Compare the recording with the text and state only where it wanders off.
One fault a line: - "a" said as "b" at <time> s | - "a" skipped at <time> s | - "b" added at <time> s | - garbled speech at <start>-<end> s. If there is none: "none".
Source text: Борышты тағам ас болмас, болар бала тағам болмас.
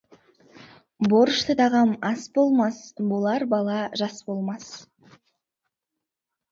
- "тағам" said as "жас" at 4.0 s